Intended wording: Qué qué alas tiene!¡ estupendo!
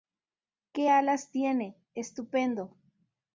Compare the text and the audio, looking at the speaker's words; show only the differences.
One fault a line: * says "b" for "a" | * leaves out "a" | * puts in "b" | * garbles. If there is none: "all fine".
* leaves out "qué"